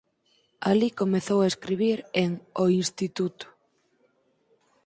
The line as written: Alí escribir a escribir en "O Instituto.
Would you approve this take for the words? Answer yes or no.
no